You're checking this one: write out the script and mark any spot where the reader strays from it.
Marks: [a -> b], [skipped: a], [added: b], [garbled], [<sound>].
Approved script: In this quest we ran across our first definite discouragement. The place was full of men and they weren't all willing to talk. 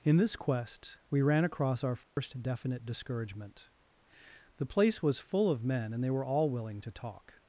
In this quest we ran across our first [dropout] definite discouragement. The place was full of men and they [weren't -> were] all willing to talk.